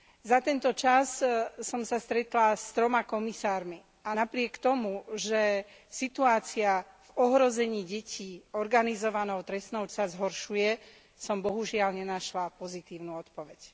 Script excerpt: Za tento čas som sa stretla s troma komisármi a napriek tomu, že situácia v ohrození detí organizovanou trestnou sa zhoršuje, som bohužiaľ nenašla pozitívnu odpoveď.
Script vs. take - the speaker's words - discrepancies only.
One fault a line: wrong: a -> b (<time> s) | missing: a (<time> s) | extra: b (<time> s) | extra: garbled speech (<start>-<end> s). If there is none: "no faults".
no faults